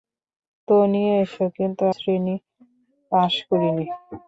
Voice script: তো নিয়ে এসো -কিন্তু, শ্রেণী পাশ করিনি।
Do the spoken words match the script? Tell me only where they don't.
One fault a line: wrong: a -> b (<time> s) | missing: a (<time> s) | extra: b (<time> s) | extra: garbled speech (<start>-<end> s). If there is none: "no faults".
no faults